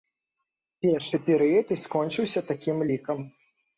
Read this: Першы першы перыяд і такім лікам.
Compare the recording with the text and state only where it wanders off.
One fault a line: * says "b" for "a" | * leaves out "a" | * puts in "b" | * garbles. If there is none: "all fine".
* leaves out "першы"
* puts in "скончыўся"